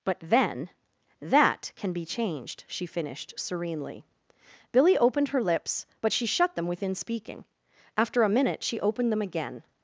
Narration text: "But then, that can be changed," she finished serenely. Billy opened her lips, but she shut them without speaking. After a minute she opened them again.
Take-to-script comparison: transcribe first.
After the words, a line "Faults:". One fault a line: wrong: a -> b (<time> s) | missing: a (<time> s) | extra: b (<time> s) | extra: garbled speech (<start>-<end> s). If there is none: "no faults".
"But then, that can be changed," she finished serenely. Billy opened her lips, but she shut them within speaking. After a minute she opened them again.
Faults:
wrong: without -> within (6.7 s)